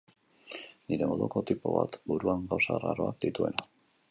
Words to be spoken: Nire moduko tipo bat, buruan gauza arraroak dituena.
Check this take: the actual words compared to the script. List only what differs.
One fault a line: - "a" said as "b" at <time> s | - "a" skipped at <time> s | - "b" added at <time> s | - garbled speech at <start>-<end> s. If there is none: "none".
none